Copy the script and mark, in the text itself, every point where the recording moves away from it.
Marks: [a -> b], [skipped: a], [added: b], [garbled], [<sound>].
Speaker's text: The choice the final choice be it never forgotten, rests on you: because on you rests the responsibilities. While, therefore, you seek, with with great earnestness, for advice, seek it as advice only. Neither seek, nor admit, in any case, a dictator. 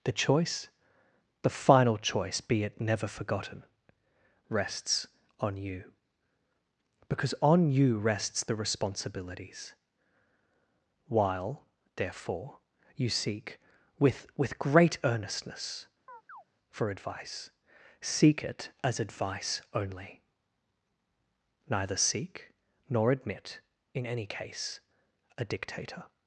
The choice the final choice be it never forgotten, rests on you: because on you rests the responsibilities. While, therefore, you seek, with with great earnestness, [chirp] for advice, seek it as advice only. Neither seek, nor admit, in any case, a dictator.